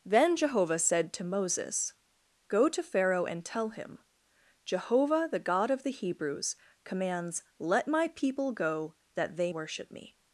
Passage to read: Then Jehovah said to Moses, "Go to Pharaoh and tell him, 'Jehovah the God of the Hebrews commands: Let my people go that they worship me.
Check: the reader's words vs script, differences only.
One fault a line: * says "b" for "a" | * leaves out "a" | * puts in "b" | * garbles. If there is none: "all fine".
all fine